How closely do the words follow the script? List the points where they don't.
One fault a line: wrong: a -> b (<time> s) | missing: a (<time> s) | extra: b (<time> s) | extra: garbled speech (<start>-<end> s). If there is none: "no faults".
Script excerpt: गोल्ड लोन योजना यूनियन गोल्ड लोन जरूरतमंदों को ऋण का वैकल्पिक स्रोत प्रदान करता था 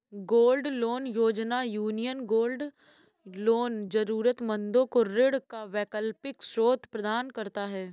wrong: था -> है (7.7 s)